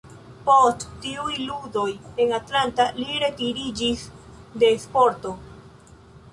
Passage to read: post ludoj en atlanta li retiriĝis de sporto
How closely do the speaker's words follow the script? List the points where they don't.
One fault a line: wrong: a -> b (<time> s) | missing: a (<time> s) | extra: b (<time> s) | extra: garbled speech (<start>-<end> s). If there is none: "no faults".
extra: tiuj (1.0 s)